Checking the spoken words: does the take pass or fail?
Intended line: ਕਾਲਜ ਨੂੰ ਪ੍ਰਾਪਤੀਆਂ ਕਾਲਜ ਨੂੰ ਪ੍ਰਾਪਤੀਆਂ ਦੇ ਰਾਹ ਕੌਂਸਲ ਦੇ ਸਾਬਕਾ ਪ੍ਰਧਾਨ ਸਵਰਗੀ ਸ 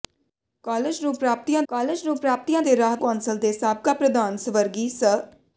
pass